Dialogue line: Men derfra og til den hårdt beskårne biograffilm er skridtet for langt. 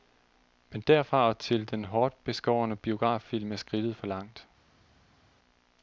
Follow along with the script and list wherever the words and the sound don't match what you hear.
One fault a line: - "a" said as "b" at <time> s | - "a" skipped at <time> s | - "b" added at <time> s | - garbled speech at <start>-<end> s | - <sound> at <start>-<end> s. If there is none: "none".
none